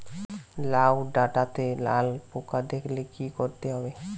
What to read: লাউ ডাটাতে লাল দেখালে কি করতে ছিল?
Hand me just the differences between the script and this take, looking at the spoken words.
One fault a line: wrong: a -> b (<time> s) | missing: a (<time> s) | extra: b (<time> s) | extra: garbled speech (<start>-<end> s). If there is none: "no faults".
extra: পোকা (2.3 s)
wrong: ছিল -> হবে (3.7 s)